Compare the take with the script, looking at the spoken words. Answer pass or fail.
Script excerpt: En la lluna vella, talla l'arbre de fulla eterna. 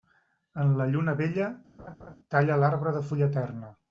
pass